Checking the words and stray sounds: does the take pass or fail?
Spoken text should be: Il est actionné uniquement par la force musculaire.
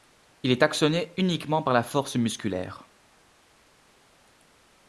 pass